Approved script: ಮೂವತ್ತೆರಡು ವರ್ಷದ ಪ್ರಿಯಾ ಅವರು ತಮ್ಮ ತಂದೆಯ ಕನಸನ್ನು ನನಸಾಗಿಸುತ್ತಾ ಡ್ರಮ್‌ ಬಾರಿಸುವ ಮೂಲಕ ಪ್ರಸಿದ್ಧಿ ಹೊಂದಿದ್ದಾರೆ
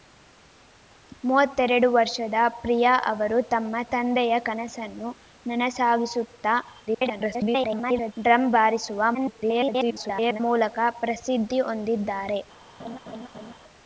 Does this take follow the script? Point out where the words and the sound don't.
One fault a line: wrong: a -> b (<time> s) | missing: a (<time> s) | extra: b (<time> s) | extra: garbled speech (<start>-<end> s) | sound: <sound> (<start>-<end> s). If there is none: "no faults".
extra: garbled speech (6.9-8.1 s)
extra: garbled speech (9.1-10.4 s)
sound: laugh (12.8-13.5 s)